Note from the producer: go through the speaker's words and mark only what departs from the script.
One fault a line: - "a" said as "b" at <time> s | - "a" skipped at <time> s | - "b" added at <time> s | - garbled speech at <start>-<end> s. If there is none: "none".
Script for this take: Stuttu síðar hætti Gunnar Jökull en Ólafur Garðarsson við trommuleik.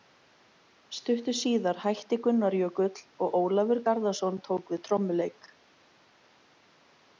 - "en" said as "og" at 3.3 s
- "tók" added at 4.5 s